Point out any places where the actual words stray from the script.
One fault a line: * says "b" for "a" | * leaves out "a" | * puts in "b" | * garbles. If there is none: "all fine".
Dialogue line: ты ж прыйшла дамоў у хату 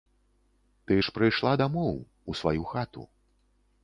* puts in "сваю"